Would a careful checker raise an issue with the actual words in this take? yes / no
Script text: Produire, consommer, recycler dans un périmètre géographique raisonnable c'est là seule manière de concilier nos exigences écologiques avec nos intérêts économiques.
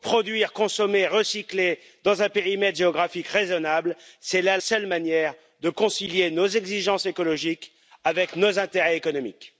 no